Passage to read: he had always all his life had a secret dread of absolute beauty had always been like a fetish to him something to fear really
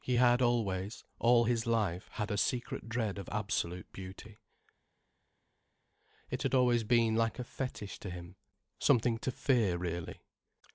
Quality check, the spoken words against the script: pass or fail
fail